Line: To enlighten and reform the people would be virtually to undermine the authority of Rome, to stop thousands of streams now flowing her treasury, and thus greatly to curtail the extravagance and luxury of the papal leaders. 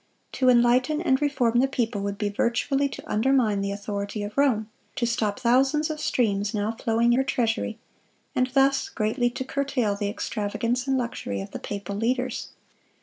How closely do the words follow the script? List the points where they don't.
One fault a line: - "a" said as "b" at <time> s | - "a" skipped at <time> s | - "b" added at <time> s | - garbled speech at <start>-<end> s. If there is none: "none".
none